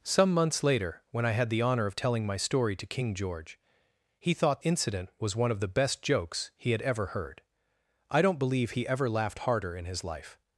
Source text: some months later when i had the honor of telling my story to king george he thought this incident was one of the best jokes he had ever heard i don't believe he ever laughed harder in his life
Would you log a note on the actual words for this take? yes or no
yes